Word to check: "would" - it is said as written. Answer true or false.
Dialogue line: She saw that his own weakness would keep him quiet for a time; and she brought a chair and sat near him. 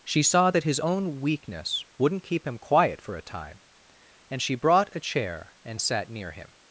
false